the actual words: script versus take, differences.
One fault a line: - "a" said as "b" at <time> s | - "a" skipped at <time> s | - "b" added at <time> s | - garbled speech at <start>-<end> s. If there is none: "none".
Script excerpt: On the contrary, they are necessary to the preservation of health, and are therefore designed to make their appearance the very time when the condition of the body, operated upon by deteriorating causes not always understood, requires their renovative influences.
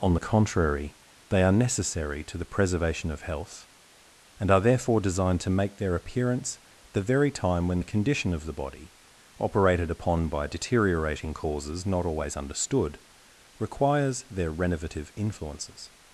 none